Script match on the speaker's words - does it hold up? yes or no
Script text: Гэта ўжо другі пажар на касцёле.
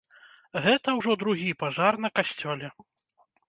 yes